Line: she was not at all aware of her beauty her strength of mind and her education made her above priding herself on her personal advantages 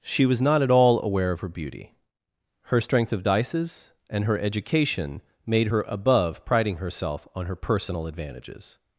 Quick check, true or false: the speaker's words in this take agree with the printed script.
false